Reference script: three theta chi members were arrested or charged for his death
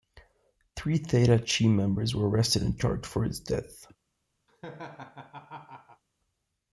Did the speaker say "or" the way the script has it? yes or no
no